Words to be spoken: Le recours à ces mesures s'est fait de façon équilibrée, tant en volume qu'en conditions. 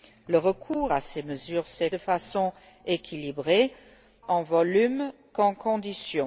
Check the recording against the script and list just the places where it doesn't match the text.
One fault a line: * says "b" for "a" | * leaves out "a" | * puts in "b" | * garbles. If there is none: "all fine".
* leaves out "fait"
* leaves out "tant"